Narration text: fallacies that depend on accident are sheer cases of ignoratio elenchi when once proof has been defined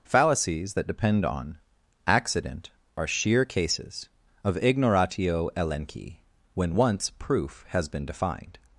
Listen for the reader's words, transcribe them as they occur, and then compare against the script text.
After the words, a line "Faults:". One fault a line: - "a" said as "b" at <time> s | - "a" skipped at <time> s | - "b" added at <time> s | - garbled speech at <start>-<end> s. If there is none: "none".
fallacies that depend on accident are sheer cases of ignoratio elenchi when once proof has been defined
Faults:
none